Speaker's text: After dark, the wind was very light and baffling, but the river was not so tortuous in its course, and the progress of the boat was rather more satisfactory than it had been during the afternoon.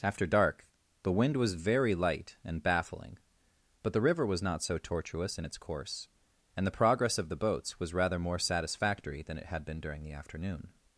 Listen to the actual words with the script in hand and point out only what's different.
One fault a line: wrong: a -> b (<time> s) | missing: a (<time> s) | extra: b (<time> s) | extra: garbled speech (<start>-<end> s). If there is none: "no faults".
wrong: boat -> boats (7.4 s)